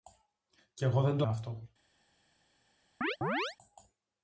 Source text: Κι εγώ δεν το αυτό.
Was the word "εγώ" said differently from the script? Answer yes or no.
no